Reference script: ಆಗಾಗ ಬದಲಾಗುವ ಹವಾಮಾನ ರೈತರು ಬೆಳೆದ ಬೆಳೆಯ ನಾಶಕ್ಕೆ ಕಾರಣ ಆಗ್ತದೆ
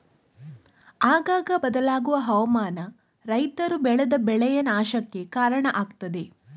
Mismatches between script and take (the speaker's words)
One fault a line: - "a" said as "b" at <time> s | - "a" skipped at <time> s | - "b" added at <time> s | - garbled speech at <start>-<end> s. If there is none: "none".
none